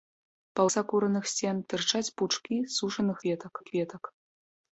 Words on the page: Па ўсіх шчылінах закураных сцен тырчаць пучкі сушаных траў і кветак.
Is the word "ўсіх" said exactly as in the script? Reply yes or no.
no